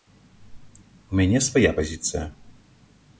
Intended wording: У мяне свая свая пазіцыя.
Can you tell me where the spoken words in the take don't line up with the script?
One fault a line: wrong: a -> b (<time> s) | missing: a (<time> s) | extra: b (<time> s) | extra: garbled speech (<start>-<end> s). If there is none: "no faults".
missing: свая (1.7 s)